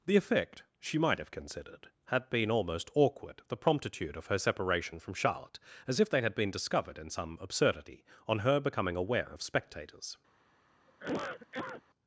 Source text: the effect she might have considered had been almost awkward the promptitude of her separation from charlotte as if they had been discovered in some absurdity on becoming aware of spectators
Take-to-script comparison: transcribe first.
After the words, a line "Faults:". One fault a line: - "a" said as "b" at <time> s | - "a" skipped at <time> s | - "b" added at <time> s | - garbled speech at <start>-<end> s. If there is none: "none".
the effect she might have considered had been almost awkward the promptitude of her separation from charlotte as if they had been discovered in some absurdity on her becoming aware of spectators
Faults:
- "her" added at 8.4 s